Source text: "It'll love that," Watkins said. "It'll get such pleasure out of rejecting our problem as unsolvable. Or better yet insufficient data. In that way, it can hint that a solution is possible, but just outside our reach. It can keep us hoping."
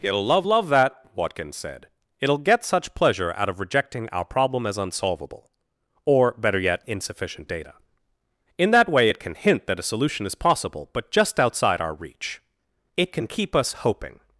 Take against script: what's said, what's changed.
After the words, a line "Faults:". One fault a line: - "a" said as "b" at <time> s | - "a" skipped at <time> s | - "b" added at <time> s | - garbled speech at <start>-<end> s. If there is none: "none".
"It'll love love that," Watkins said. "It'll get such pleasure out of rejecting our problem as unsolvable. Or better yet insufficient data. In that way, it can hint that a solution is possible, but just outside our reach. It can keep us hoping."
Faults:
- "love" added at 0.4 s